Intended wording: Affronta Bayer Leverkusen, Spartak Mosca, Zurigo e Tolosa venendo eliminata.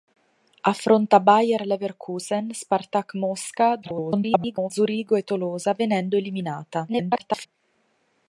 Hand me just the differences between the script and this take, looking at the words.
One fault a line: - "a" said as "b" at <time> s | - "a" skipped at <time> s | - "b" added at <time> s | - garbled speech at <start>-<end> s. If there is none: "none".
- garbled speech at 3.8-4.7 s
- garbled speech at 6.9-7.5 s